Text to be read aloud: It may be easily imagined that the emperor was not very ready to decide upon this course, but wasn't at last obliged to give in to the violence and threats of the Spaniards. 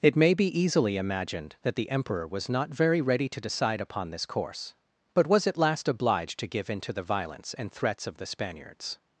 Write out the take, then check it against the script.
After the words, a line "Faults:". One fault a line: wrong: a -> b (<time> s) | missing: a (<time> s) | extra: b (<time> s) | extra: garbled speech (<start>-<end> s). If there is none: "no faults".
It may be easily imagined that the emperor was not very ready to decide upon this course, but was at last obliged to give in to the violence and threats of the Spaniards.
Faults:
wrong: wasn't -> was (5.3 s)